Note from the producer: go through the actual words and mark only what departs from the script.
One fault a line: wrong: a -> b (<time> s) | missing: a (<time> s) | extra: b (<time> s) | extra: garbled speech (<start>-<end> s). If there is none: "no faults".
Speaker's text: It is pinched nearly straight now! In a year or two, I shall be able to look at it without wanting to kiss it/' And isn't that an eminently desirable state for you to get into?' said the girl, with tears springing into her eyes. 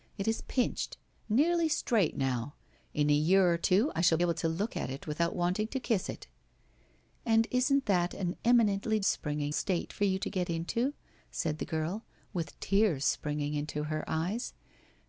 missing: be (4.2 s)
wrong: desirable -> springing (9.0 s)